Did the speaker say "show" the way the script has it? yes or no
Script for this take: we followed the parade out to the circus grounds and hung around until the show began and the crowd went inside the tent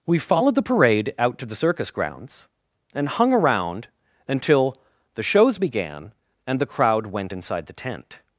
no